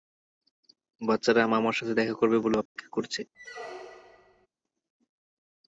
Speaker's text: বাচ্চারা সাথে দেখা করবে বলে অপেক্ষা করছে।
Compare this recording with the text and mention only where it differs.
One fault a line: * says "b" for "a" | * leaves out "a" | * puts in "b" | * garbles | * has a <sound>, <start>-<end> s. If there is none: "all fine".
* puts in "মামার"
* has a dropout, 2.7-2.8 s
* has a squeak, 3.3-4.5 s